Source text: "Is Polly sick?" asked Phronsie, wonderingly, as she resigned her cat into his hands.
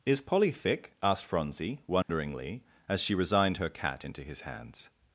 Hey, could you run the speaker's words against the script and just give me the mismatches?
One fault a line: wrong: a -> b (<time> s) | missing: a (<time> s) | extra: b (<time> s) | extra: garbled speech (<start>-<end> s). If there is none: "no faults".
wrong: sick -> thick (0.5 s)